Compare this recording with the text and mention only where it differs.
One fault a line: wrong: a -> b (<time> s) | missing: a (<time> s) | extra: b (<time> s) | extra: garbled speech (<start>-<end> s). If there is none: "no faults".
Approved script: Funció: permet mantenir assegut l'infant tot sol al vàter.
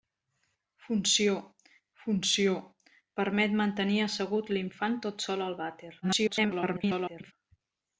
extra: funció (2.0 s)
extra: garbled speech (6.0-7.3 s)